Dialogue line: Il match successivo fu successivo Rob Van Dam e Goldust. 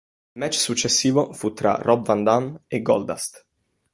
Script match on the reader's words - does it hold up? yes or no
no